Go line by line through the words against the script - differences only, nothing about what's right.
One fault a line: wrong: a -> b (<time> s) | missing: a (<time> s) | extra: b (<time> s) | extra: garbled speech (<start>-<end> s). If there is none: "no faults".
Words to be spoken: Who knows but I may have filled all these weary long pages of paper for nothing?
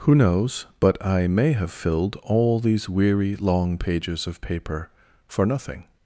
no faults